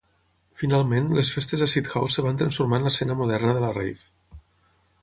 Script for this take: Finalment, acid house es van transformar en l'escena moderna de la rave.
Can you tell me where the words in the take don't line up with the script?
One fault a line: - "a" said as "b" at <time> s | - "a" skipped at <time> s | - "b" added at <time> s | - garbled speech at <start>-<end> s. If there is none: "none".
- "les festes" added at 1.2 s